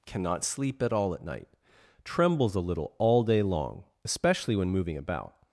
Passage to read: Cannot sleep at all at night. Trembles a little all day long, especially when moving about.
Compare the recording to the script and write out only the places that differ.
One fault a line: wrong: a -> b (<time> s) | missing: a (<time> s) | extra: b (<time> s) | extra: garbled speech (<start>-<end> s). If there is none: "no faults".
no faults